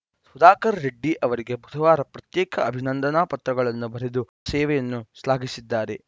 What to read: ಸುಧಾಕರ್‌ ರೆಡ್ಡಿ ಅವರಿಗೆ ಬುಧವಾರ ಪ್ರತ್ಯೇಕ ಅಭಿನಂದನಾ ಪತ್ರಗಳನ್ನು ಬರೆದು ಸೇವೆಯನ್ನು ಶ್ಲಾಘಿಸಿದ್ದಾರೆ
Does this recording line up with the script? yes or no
yes